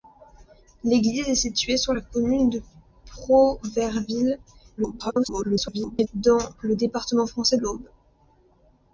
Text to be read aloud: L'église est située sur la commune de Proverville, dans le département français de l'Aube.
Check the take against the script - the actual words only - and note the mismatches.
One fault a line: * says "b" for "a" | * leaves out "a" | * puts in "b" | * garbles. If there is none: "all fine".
* garbles
* leaves out "de"